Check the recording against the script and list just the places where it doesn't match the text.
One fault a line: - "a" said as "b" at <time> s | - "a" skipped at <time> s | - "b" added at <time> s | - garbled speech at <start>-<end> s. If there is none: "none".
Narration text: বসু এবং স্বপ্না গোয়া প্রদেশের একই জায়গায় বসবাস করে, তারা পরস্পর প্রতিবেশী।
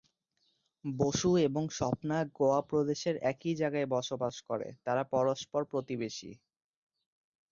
none